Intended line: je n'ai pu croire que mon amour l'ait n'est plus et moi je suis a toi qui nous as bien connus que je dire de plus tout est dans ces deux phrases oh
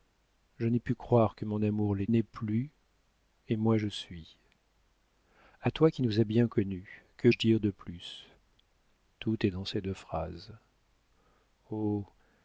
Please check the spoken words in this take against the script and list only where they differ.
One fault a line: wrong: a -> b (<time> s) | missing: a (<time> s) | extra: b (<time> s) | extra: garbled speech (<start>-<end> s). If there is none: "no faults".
no faults